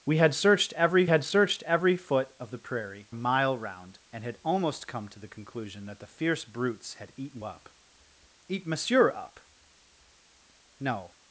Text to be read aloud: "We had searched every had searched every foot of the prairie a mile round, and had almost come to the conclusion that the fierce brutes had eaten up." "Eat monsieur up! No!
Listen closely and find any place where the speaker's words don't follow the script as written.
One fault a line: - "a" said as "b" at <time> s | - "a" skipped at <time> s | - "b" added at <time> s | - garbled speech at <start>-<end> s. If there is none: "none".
none